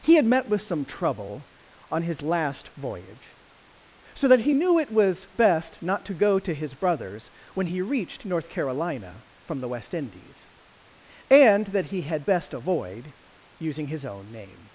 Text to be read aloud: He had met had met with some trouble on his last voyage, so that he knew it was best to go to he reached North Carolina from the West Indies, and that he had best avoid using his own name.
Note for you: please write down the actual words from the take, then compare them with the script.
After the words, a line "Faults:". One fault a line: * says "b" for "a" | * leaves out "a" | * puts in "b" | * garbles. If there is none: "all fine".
He had met with some trouble on his last voyage, so that he knew it was best not to go to his brother's when he reached North Carolina from the West Indies, and that he had best avoid using his own name.
Faults:
* leaves out "had met"
* puts in "not"
* puts in "his brother's when"